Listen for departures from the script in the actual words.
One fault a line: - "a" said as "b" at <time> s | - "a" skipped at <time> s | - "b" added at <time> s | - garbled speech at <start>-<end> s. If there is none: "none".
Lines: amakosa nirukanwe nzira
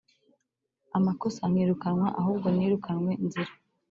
- "nkirukanwa ahubwo" added at 1.5 s